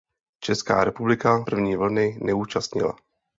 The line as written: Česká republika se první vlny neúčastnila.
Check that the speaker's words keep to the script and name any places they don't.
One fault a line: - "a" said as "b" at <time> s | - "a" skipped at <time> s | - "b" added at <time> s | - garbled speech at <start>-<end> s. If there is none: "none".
- "se" skipped at 1.4 s